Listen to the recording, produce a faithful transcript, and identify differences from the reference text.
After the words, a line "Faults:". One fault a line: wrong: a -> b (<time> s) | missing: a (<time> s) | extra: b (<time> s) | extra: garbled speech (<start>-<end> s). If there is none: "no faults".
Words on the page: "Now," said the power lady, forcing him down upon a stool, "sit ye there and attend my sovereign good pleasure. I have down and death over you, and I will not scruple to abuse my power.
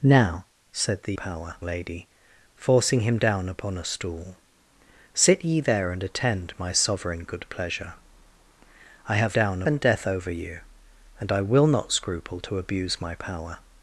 "Now," said the power lady, forcing him down upon a stool, "sit ye there and attend my sovereign good pleasure. I have down and death over you, and I will not scruple to abuse my power.
Faults:
no faults